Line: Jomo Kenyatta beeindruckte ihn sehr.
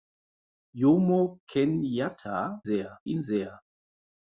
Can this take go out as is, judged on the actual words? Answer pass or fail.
fail